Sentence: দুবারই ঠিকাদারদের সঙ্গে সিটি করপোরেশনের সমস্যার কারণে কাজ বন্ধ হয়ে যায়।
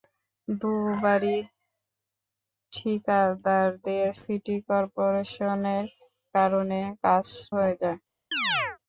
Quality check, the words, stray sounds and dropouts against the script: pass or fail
fail